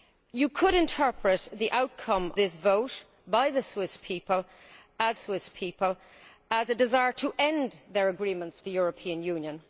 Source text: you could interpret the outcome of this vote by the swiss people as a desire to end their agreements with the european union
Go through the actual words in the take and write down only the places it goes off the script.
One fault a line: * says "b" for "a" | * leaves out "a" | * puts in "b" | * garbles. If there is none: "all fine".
* leaves out "of"
* puts in "swiss people as"
* leaves out "with"